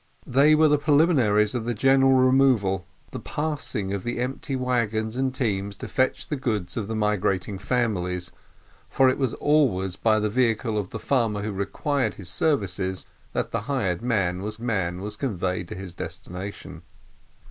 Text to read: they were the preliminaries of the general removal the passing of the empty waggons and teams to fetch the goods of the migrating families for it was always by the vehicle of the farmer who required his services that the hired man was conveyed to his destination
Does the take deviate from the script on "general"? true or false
false